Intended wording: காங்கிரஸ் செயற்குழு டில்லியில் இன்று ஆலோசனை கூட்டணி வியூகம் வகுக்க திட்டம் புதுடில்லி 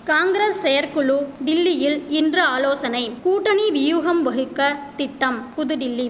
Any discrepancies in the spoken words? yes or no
no